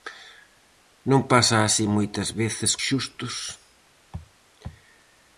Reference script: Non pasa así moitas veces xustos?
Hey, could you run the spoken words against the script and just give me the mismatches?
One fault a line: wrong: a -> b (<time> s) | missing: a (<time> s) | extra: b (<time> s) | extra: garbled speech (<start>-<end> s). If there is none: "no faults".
no faults